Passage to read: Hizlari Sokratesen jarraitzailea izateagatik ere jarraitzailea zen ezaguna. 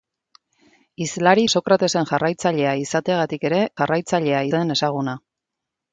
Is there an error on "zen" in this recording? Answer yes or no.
no